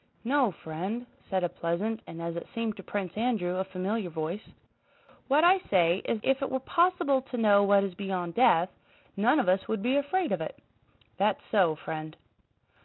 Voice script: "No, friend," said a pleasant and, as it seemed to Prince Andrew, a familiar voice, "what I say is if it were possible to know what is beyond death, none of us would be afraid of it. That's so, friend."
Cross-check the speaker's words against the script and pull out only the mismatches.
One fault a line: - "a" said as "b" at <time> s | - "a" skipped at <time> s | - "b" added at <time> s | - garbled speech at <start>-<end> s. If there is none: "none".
none